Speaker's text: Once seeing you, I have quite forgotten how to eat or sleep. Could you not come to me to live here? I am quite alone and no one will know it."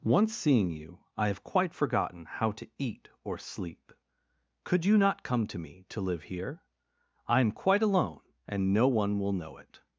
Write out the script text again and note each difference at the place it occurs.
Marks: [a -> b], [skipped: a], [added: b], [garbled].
Once seeing you, I have quite forgotten how to eat or sleep. Could you not come to me to live here? I am quite alone and no one will know it."